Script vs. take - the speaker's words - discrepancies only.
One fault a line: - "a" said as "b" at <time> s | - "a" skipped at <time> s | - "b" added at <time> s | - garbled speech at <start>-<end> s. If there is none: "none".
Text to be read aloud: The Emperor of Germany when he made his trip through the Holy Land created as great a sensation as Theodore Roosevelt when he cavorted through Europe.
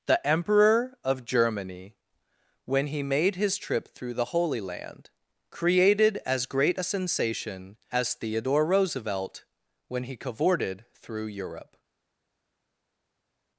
none